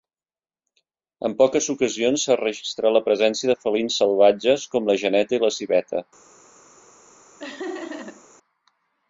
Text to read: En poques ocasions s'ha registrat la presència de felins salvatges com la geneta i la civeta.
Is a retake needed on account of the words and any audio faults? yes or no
yes